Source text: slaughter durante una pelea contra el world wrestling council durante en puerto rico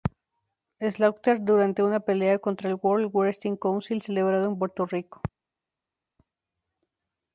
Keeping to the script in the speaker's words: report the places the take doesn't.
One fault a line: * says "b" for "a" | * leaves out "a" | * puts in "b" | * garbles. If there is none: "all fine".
* says "celebrado" for "durante"